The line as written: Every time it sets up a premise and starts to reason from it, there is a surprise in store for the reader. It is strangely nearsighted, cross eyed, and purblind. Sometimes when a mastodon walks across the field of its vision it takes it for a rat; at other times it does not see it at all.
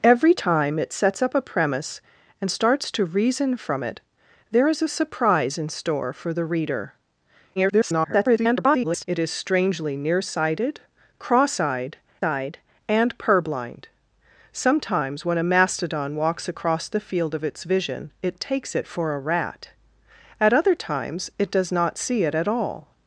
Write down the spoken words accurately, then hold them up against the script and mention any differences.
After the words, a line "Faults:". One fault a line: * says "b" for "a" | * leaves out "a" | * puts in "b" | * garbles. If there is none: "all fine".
Every time it sets up a premise and starts to reason from it, there is a surprise in store for the reader. [garbled] It is strangely nearsighted, cross eyed eyed, and purblind. Sometimes when a mastodon walks across the field of its vision it takes it for a rat; at other times it does not see it at all.
Faults:
* garbles
* puts in "eyed"